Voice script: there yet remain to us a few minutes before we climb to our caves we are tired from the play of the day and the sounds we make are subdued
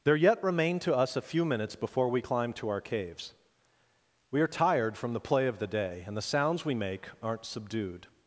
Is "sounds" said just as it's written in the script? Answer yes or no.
yes